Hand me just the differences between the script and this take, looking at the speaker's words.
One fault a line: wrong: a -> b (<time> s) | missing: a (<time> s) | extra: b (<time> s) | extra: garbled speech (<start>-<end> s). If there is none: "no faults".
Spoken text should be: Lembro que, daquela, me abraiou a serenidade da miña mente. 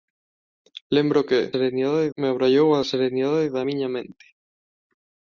wrong: daquela -> serenidade (1.5 s)